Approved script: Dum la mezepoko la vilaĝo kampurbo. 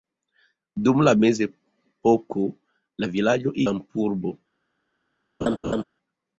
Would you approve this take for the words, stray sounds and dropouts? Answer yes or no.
no